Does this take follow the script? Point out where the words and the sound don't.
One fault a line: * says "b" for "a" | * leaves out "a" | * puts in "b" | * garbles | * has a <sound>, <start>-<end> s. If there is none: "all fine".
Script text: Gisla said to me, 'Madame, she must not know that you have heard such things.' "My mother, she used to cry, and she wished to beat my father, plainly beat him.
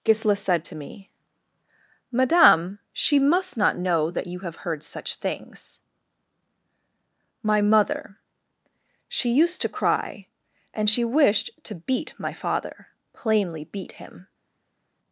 all fine